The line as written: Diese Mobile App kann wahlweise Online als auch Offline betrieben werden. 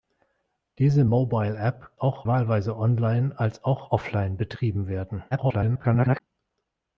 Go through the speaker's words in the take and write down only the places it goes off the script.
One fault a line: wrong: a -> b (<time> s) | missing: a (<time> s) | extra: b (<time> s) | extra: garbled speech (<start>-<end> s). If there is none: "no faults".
wrong: kann -> auch (2.0 s)
extra: garbled speech (5.3-6.2 s)